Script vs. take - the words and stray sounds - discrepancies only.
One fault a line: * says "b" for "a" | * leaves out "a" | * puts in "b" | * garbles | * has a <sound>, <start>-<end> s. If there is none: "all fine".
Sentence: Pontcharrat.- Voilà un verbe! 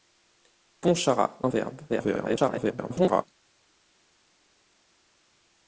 * leaves out "Voilà"
* garbles